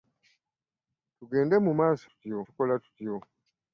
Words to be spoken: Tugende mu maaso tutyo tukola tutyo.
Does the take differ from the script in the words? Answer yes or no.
no